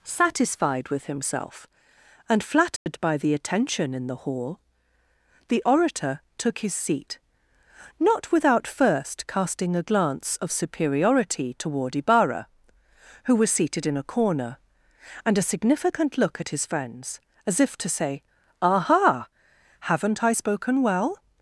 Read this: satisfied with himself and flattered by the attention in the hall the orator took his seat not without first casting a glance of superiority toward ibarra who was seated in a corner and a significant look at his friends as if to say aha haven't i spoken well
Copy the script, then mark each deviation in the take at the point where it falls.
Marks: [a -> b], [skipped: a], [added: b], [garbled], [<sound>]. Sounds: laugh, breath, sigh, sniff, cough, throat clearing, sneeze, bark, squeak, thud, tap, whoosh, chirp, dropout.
satisfied with himself and flattered [dropout] by the attention in the hall the orator took his seat not without first casting a glance of superiority toward ibarra who was seated in a corner and a significant look at his friends as if to say aha haven't i spoken well